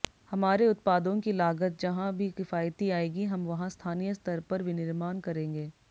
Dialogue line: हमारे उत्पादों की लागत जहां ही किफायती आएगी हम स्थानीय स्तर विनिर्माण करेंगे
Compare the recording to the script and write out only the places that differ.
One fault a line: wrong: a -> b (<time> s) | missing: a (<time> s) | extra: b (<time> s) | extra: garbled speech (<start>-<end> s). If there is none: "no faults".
wrong: ही -> भी (2.2 s)
extra: वहां (3.5 s)
extra: पर (4.5 s)